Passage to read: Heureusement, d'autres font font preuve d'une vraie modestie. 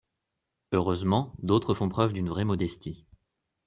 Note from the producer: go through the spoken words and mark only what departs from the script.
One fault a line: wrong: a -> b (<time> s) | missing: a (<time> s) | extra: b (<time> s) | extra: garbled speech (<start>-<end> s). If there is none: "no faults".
missing: font (1.9 s)